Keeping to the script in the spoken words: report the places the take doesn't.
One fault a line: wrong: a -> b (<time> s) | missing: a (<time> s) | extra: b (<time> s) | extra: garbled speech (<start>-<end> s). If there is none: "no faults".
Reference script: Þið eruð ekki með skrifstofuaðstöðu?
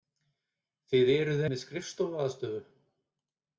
missing: ekki (1.4 s)